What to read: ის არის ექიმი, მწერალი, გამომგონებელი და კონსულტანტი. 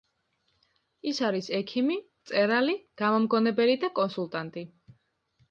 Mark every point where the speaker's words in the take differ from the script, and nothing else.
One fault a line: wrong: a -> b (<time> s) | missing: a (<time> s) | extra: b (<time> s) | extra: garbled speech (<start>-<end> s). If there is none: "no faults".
no faults